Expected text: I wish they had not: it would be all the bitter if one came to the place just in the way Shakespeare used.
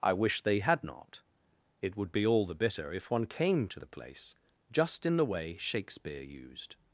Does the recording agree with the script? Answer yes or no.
yes